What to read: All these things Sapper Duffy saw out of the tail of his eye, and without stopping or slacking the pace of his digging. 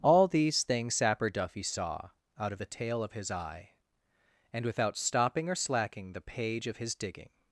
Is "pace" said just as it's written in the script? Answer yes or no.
no